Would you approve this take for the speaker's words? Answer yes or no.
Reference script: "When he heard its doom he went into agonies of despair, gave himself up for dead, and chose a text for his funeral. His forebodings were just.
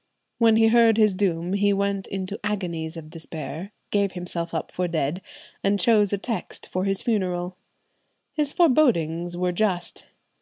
no